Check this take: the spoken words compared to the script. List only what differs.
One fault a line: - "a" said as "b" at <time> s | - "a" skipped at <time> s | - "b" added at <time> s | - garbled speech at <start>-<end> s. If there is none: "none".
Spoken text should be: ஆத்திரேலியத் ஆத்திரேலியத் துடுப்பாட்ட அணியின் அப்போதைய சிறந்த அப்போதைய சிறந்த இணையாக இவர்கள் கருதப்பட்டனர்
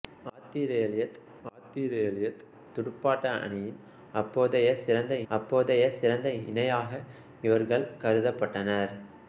none